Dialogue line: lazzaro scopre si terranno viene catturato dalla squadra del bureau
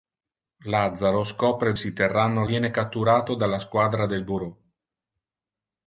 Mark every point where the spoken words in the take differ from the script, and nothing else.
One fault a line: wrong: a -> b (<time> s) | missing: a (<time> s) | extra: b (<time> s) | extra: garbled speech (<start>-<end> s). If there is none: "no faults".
no faults